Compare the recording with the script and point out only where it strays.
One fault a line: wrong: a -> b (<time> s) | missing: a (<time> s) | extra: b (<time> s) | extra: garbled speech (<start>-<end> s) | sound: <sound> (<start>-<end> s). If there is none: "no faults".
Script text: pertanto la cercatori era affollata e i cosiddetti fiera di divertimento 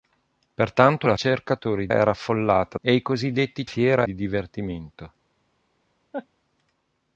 sound: laugh (6.1-6.3 s)